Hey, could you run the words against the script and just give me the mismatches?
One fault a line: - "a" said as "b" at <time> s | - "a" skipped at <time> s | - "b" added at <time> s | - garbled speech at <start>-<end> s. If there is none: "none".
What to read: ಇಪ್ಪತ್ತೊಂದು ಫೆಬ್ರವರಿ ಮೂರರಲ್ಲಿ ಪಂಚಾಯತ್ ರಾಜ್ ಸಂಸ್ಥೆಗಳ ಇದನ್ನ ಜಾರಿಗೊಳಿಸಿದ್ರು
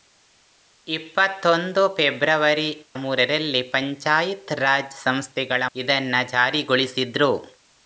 none